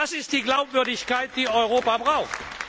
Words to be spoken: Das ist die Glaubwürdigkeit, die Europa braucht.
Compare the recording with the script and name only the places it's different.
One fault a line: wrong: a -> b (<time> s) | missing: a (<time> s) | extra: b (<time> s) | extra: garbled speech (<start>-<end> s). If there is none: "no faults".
no faults